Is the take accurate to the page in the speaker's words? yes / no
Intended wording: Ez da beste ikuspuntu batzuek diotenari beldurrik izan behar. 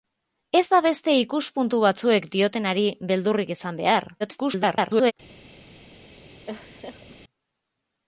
no